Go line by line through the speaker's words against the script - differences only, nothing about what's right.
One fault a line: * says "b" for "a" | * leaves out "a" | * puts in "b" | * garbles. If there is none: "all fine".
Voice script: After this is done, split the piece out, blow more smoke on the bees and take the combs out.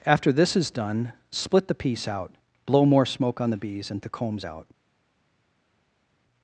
* leaves out "take"